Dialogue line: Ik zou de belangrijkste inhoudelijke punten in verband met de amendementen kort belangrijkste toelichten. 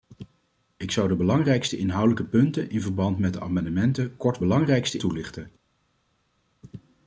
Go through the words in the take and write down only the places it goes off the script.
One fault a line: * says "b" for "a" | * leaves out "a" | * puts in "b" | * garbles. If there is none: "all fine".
all fine